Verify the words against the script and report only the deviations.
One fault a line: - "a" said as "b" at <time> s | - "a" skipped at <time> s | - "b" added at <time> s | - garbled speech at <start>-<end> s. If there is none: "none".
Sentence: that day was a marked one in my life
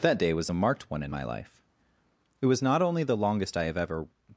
- "it was not only the longest i have ever" added at 2.4 s